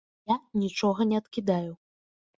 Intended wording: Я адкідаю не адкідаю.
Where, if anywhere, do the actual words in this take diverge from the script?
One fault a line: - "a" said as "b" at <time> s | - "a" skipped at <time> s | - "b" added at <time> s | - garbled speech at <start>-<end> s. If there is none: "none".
- "адкідаю" said as "нічога" at 0.6 s